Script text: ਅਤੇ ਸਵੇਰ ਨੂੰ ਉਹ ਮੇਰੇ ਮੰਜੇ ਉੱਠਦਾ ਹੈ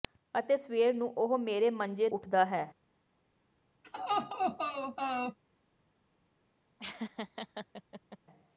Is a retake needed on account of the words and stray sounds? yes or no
yes